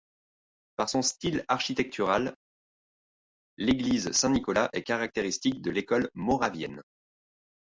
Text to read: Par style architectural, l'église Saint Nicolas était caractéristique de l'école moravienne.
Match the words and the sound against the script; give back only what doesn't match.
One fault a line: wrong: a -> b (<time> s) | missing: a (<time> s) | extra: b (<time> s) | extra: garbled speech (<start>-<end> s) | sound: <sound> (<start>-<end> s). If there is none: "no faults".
extra: son (0.9 s)
wrong: était -> est (4.7 s)